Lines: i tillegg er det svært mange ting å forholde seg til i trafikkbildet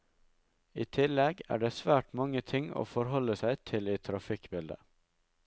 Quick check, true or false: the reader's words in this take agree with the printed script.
true